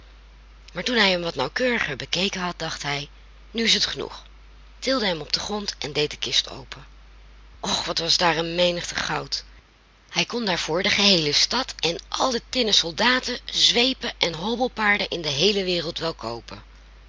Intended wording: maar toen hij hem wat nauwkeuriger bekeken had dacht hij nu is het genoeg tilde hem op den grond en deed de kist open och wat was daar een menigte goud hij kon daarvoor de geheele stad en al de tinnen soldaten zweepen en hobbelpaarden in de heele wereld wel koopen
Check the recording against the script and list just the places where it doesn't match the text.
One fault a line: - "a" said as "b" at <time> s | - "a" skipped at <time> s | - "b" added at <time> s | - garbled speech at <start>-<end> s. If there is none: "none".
none